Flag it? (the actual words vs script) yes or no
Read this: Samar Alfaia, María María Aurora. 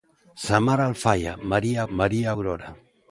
no